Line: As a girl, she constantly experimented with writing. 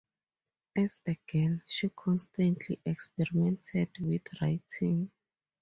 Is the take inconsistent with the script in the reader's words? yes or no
no